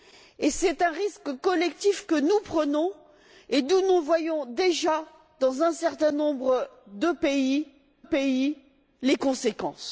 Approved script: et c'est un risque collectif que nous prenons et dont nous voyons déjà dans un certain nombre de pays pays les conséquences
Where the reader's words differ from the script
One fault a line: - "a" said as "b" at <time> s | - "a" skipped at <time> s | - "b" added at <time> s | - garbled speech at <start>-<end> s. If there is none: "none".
none